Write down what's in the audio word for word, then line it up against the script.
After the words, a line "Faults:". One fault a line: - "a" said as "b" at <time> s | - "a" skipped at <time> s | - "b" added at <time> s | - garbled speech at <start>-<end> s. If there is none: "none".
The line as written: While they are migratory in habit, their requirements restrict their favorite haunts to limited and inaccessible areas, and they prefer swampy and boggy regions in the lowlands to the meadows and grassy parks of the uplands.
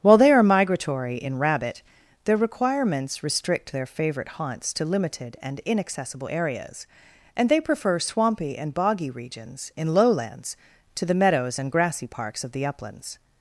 While they are migratory in rabbit, their requirements restrict their favorite haunts to limited and inaccessible areas, and they prefer swampy and boggy regions in lowlands to the meadows and grassy parks of the uplands.
Faults:
- "habit" said as "rabbit" at 1.4 s
- "the" skipped at 9.9 s